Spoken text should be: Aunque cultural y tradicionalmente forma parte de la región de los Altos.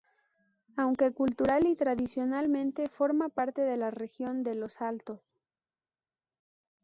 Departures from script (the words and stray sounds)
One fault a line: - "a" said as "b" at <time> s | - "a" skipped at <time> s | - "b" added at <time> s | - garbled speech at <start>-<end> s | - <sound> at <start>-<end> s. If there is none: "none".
none